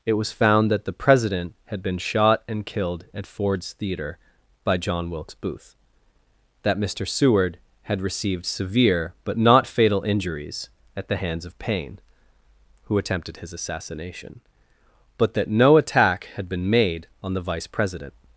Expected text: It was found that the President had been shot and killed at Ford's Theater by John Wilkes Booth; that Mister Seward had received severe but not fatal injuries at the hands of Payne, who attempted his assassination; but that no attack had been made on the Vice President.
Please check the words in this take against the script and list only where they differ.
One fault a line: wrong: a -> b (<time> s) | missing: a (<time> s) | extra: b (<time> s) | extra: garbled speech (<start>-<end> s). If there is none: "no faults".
no faults